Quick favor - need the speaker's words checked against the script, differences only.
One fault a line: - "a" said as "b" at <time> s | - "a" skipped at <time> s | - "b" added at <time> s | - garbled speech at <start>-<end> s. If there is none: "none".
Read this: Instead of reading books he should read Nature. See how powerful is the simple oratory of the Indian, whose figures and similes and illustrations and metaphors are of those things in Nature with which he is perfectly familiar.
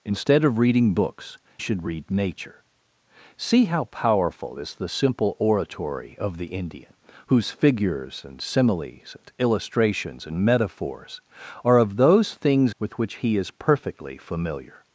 - "he" skipped at 1.4 s
- "in Nature" skipped at 12.8 s